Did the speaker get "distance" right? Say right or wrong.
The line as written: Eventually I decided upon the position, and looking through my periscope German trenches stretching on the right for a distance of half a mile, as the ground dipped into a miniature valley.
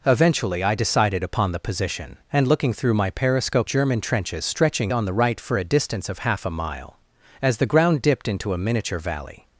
right